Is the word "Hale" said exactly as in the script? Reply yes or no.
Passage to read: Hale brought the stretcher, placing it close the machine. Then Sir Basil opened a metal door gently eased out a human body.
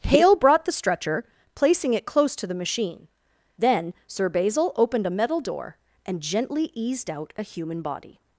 yes